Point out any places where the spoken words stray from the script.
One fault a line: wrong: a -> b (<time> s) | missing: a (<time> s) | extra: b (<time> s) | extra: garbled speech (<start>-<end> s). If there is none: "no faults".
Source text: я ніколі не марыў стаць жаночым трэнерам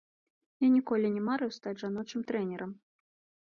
no faults